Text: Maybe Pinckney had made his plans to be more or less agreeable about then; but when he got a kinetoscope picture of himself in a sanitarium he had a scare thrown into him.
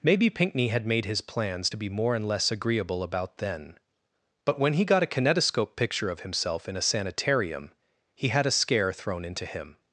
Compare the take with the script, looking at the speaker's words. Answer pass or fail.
fail